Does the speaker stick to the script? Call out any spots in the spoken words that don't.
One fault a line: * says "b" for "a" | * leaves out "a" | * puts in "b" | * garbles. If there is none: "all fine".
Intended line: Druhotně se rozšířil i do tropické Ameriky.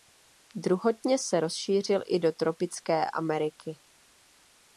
all fine